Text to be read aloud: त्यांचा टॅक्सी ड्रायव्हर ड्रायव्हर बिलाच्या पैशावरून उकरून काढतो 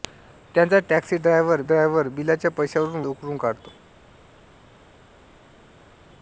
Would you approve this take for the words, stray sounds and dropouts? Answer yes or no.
yes